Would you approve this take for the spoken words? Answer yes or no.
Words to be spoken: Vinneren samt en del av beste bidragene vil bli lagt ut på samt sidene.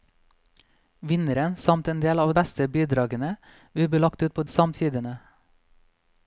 yes